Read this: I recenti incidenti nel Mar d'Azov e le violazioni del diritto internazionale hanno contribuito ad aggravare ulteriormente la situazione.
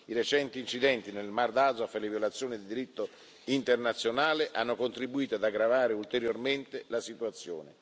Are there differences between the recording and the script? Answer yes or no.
no